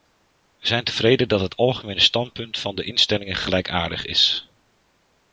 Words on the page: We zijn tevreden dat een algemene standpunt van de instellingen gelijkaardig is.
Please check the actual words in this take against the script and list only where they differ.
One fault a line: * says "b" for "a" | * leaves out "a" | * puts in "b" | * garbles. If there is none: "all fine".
* says "het" for "een"